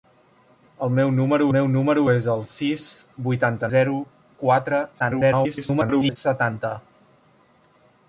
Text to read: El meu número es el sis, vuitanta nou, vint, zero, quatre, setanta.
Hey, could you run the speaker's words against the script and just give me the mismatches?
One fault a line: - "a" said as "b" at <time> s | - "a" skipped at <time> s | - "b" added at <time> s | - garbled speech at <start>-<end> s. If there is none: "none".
- "meu número" added at 1.6 s
- "nou vint" skipped at 3.7 s
- garbled speech at 5.0-6.2 s